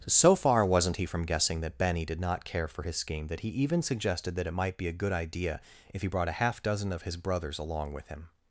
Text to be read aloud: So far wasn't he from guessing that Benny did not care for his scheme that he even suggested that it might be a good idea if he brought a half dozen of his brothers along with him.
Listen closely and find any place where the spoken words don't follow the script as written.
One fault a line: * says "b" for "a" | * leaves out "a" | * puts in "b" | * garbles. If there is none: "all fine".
all fine